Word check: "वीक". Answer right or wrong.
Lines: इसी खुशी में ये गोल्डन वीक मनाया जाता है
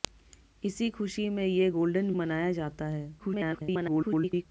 wrong